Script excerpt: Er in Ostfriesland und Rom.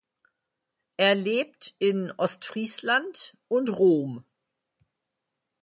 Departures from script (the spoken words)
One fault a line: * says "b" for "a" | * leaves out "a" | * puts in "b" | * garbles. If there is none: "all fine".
* puts in "lebt"